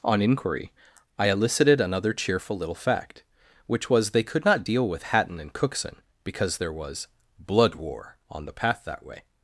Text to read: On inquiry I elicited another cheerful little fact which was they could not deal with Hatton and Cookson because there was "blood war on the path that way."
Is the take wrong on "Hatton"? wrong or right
right